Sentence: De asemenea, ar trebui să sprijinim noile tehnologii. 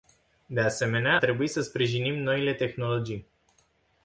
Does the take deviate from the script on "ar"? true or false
true